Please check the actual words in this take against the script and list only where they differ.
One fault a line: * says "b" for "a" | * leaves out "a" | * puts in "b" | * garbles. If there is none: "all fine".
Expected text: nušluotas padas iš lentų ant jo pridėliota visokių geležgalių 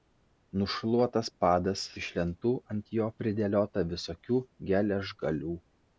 all fine